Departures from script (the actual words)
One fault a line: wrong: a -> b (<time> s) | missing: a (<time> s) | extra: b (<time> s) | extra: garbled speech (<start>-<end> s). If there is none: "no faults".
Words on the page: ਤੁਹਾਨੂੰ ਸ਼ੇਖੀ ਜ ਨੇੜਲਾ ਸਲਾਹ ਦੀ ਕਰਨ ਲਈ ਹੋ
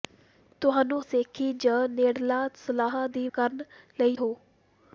no faults